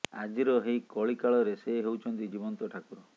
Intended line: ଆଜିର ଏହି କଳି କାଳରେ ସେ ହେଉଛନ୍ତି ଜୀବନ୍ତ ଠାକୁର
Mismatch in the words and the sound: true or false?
false